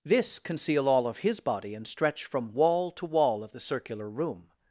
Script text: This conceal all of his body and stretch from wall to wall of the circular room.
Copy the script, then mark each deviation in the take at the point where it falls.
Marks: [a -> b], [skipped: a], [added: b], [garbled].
This conceal all of his body and stretch from wall to wall of the circular room.